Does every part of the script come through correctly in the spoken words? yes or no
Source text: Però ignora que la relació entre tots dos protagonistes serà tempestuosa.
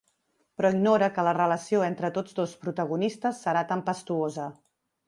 yes